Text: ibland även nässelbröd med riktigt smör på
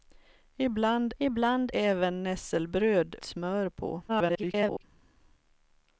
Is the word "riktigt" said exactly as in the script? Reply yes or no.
no